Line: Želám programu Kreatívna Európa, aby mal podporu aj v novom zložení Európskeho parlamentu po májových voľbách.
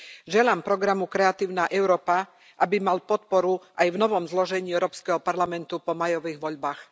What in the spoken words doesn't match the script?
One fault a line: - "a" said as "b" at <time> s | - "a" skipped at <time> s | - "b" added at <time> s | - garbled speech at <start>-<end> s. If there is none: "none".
none